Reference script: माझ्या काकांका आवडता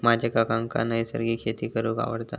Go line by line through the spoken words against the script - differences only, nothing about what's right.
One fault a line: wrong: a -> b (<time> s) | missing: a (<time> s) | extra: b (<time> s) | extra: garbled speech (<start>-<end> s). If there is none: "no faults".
extra: नैसर्गिक शेती करूंक (0.8 s)